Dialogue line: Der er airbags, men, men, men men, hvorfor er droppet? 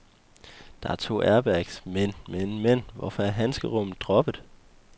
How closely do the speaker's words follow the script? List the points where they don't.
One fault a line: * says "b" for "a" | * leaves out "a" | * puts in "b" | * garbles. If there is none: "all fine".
* puts in "to"
* leaves out "men"
* puts in "handskerummet"